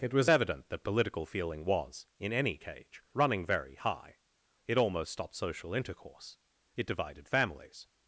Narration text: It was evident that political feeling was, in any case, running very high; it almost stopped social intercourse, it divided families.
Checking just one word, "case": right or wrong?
wrong